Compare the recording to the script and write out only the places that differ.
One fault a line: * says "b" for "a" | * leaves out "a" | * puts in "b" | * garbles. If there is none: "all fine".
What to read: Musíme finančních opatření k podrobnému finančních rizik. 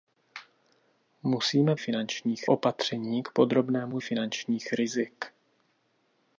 all fine